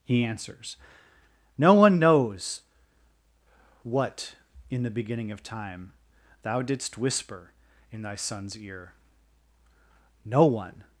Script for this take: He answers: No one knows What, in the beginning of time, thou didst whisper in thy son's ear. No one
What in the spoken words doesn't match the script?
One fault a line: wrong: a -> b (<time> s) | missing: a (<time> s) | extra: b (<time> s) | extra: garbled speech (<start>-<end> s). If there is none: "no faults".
no faults